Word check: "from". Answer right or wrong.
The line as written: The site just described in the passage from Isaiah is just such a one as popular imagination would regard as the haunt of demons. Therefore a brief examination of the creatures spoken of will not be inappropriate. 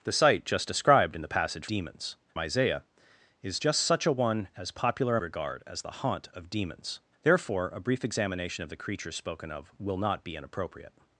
wrong